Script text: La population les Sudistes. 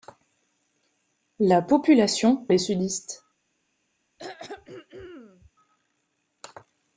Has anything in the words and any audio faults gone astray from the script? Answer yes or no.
yes